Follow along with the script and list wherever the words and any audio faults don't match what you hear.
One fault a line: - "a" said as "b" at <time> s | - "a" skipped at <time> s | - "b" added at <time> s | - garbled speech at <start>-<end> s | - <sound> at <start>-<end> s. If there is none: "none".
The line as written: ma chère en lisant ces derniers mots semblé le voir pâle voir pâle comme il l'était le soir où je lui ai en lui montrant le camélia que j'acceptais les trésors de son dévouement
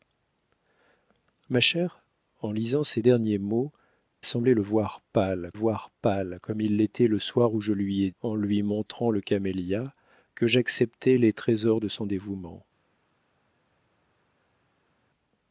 none